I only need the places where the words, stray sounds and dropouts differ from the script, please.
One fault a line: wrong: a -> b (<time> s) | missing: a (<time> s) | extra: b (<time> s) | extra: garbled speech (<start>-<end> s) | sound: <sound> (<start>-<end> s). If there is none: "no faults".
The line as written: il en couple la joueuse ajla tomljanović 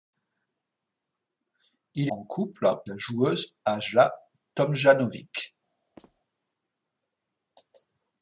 sound: squeak (6.0-6.2 s)